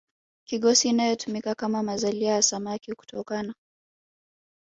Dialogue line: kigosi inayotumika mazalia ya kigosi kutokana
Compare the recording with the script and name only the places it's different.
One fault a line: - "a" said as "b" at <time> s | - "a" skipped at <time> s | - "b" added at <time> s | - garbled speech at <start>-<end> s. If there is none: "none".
- "kama" added at 1.6 s
- "kigosi" said as "samaki" at 2.4 s